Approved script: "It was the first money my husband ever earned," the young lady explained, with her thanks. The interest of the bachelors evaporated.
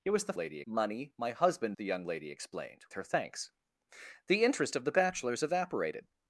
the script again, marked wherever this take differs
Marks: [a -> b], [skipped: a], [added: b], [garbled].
"It was the [first -> lady] money my husband [skipped: ever earned,"] the young lady explained, [skipped: with] her thanks. The interest of the bachelors evaporated.